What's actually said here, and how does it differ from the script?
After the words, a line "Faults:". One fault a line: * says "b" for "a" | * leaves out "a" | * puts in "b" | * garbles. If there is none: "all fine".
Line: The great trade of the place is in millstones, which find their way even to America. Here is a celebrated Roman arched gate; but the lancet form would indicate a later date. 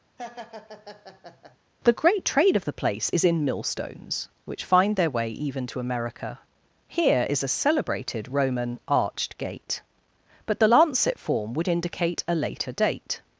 The great trade of the place is in millstones, which find their way even to America. Here is a celebrated Roman arched gate; but the lancet form would indicate a later date.
Faults:
all fine